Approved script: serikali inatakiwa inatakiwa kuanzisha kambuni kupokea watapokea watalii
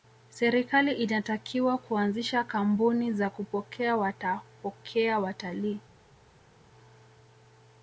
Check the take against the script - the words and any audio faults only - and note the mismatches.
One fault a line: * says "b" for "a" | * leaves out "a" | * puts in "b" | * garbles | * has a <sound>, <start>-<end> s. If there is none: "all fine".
* leaves out "inatakiwa"
* puts in "za"